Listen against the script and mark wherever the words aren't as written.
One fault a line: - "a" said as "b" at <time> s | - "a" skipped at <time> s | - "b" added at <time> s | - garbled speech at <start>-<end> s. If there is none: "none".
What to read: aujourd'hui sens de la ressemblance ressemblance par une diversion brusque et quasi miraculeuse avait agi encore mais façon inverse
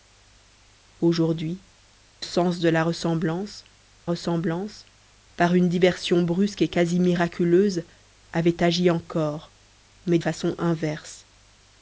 none